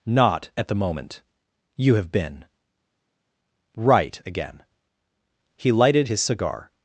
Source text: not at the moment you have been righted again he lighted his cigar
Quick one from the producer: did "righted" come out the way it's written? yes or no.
no